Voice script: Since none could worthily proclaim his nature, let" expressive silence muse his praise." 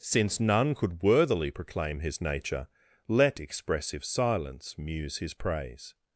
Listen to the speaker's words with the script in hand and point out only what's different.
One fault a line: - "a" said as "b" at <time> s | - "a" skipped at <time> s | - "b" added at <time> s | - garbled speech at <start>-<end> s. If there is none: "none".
none